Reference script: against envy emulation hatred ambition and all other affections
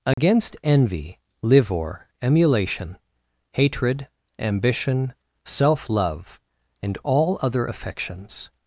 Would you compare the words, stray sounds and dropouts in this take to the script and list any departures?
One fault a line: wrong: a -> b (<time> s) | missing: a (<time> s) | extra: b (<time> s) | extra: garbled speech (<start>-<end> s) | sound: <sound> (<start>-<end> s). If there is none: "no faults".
sound: dropout (0.1-0.2 s)
extra: livor (1.4 s)
extra: self love (5.4 s)